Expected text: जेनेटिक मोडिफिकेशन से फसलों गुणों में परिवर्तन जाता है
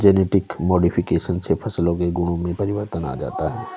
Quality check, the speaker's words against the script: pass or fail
fail